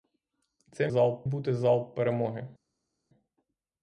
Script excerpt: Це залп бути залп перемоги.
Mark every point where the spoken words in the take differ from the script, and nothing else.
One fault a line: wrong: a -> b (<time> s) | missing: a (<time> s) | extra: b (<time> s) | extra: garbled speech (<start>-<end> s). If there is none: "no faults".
no faults